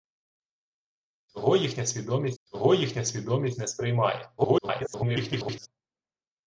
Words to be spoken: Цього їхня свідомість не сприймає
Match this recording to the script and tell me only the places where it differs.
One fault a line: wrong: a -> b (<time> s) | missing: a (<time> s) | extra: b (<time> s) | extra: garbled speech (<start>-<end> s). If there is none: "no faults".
extra: цього їхня свідомість (2.4 s)
extra: garbled speech (4.4-5.7 s)